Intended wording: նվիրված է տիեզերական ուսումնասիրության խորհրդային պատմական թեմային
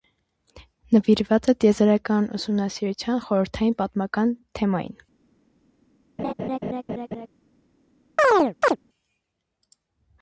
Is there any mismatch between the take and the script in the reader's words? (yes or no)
no